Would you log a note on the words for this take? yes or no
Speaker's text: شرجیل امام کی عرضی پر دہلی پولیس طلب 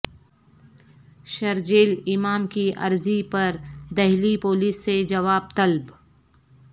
yes